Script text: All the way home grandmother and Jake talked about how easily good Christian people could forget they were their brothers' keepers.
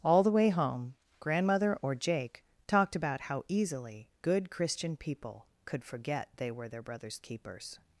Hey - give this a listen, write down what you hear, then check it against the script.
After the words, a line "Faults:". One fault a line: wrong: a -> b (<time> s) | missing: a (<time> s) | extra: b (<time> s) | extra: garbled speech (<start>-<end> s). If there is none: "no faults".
All the way home grandmother or Jake talked about how easily good Christian people could forget they were their brothers' keepers.
Faults:
wrong: and -> or (1.8 s)